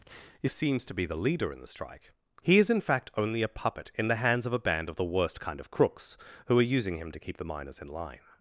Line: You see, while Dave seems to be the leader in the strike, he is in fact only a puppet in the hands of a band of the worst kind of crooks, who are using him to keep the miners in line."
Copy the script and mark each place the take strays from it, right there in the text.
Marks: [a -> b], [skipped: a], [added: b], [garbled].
You [skipped: see, while Dave] seems to be the leader in the strike, he is in fact only a puppet in the hands of a band of the worst kind of crooks, who are using him to keep the miners in line."